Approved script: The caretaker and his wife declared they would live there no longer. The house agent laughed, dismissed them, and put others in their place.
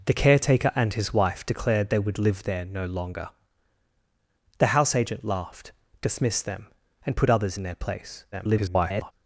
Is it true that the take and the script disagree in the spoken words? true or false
true